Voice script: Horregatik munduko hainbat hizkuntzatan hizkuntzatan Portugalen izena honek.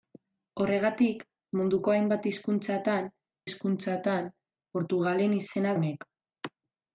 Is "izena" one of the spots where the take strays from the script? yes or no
no